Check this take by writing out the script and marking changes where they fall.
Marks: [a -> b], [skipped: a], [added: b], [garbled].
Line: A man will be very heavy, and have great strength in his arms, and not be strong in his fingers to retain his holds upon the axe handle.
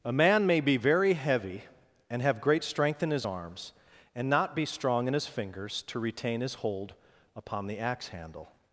A man [will -> may] be very heavy, and have great strength in his arms, and not be strong in his fingers to retain his [holds -> hold] upon the axe handle.